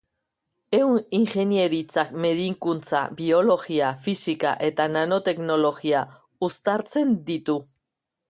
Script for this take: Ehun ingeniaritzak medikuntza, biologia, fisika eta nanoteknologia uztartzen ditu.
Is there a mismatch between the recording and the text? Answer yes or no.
no